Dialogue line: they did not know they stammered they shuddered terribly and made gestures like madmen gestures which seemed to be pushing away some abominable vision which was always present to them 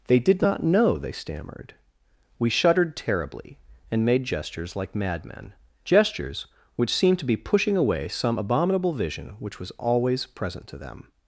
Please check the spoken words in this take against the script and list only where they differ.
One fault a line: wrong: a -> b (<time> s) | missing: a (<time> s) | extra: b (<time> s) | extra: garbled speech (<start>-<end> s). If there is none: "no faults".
wrong: they -> we (2.4 s)